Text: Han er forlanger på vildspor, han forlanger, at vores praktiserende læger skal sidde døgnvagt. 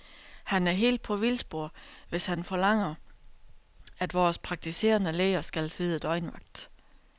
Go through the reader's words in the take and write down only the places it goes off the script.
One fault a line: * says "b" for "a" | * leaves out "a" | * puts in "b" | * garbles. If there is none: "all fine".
* says "helt" for "forlanger"
* puts in "hvis"